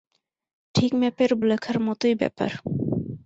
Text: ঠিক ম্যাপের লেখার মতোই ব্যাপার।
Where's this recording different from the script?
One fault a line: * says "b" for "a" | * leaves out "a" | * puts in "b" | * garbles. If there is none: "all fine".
all fine